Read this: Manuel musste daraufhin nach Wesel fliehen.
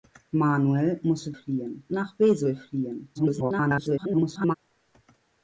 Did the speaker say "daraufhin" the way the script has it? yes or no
no